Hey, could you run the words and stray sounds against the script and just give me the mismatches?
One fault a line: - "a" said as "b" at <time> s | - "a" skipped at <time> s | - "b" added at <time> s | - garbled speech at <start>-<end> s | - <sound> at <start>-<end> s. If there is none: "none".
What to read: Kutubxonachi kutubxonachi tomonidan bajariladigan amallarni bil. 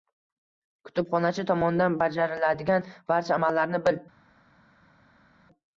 - "kutubxonachi" skipped at 1.4 s
- "barcha" added at 3.1 s